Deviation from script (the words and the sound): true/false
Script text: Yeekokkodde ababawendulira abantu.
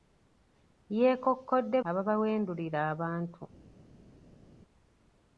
false